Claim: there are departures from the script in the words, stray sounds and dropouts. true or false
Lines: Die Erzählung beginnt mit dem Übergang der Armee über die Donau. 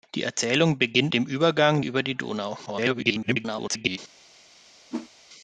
true